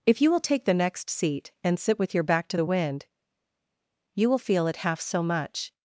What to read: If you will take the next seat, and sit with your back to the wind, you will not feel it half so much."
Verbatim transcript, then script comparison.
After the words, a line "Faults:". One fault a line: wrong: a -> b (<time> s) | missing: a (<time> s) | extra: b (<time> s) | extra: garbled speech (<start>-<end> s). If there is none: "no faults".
If you will take the next seat, and sit with your back to the wind, you will feel it half so much."
Faults:
missing: not (4.4 s)